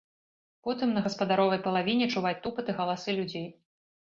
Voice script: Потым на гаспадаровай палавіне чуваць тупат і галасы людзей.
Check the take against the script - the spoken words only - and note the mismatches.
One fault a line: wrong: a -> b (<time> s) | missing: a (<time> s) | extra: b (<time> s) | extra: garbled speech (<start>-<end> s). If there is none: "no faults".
no faults